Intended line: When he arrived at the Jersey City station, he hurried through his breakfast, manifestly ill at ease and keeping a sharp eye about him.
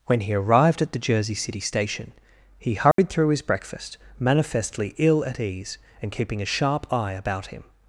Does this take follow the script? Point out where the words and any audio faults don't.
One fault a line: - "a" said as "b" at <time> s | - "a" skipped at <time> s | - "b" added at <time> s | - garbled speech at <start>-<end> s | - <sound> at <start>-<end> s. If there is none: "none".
- dropout at 2.9-3.0 s